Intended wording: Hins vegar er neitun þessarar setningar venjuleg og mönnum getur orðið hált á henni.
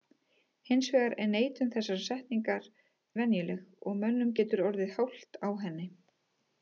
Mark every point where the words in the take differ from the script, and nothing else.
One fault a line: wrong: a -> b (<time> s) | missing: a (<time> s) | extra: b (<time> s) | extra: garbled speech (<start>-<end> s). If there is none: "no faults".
no faults